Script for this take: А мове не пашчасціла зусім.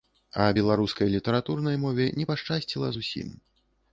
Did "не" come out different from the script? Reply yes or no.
no